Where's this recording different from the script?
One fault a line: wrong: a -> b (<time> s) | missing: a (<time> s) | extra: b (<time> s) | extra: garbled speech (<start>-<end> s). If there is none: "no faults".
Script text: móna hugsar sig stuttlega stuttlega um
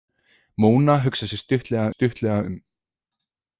no faults